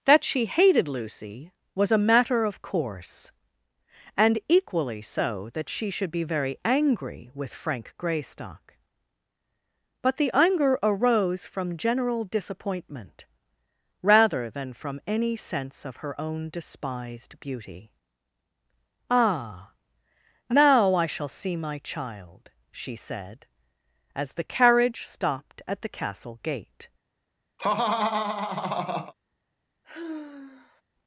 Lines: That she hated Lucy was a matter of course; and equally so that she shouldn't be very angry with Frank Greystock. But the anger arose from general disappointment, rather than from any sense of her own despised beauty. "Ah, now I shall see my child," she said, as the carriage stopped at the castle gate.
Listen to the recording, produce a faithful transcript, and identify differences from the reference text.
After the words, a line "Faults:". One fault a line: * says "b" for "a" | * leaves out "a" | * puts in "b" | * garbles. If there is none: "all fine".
That she hated Lucy was a matter of course; and equally so that she should be very angry with Frank Greystock. But the anger arose from general disappointment, rather than from any sense of her own despised beauty. "Ah, now I shall see my child," she said, as the carriage stopped at the castle gate.
Faults:
* says "should" for "shouldn't"